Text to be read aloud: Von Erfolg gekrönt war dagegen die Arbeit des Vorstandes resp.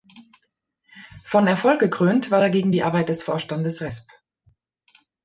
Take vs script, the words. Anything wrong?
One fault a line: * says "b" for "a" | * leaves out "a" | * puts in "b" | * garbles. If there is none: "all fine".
all fine